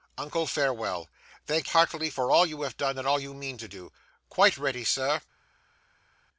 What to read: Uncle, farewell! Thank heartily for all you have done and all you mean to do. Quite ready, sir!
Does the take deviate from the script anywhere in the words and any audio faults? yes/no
no